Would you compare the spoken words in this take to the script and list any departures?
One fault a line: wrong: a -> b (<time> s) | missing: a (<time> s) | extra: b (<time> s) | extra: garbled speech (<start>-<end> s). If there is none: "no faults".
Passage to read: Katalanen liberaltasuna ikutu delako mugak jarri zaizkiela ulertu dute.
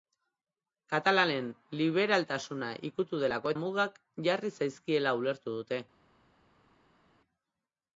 no faults